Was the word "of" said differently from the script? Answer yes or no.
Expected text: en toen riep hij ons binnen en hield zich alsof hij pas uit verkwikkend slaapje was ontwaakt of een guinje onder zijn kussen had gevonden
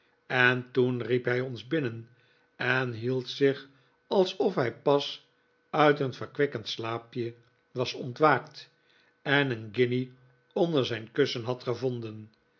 yes